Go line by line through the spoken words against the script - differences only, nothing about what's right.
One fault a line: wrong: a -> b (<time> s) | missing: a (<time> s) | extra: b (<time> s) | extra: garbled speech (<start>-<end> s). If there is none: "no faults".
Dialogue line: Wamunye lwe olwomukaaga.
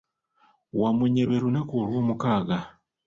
extra: lunaku (1.4 s)